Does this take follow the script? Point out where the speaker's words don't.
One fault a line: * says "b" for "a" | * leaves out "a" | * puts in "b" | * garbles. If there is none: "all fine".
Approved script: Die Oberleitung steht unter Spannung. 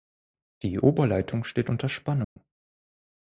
all fine